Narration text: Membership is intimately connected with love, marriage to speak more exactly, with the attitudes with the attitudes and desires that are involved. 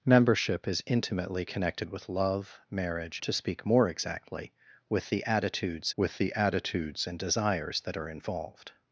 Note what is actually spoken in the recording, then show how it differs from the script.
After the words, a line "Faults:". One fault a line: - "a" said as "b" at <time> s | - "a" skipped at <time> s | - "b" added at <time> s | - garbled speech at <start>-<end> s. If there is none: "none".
Membership is intimately connected with love, marriage to speak more exactly, with the attitudes with the attitudes and desires that are involved.
Faults:
none